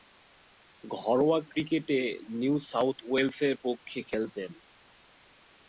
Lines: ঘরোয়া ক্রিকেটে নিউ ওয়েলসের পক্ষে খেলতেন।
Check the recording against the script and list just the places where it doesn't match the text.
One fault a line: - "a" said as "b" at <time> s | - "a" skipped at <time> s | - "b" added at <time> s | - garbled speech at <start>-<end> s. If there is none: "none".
- "সাউথ" added at 2.7 s